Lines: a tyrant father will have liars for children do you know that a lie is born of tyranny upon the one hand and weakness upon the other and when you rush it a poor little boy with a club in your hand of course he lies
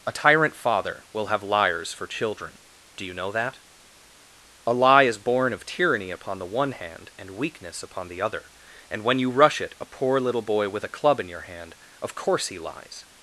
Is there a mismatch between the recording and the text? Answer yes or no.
no